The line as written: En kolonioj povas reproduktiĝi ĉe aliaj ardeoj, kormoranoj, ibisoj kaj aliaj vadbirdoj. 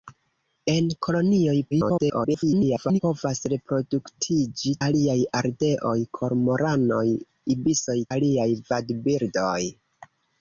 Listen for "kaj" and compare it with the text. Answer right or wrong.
wrong